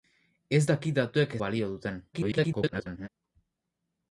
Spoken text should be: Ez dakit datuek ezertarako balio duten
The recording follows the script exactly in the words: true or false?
false